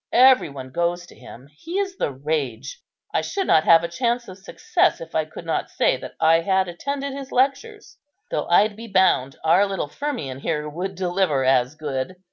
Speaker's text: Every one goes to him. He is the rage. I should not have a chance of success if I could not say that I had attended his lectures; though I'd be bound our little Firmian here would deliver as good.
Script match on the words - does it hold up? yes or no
yes